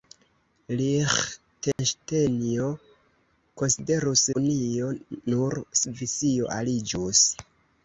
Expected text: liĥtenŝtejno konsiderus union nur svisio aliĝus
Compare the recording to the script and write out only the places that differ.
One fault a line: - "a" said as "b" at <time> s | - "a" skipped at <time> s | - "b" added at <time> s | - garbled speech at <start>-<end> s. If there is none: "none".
none